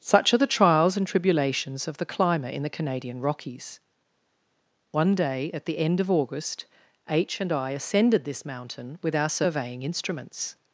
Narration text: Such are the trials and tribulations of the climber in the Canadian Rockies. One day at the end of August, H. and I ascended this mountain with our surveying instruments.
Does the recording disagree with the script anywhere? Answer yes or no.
no